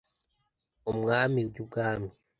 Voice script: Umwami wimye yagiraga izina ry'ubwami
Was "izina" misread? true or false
true